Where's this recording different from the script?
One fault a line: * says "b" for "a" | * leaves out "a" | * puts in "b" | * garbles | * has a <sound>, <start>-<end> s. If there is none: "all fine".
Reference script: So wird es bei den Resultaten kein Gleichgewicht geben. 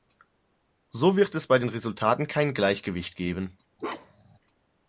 * has a bark, 3.8-4.4 s